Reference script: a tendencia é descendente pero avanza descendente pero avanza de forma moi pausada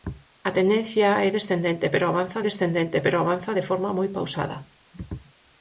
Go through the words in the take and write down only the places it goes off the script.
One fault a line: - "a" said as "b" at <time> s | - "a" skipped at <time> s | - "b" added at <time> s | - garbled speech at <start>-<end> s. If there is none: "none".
none